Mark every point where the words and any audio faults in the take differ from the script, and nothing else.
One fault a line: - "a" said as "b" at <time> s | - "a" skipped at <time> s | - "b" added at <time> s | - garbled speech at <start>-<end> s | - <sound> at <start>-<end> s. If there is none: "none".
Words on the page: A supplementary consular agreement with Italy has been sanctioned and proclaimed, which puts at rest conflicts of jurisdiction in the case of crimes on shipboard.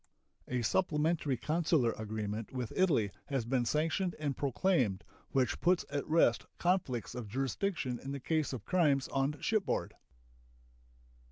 none